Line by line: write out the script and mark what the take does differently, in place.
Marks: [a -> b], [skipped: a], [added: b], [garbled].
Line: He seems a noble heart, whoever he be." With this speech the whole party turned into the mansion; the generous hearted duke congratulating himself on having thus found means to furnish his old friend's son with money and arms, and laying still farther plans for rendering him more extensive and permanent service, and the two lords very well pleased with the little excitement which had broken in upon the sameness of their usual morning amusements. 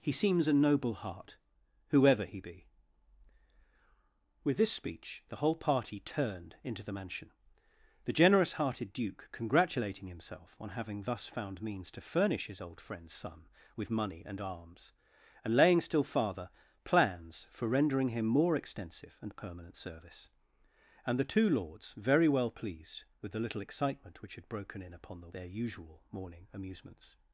He seems a noble heart, whoever he be." With this speech the whole party turned into the mansion; the generous hearted duke congratulating himself on having thus found means to furnish his old friend's son with money and arms, and laying still farther plans for rendering him more extensive and permanent service, and the two lords very well pleased with the little excitement which had broken in upon the [skipped: sameness of] their usual morning amusements.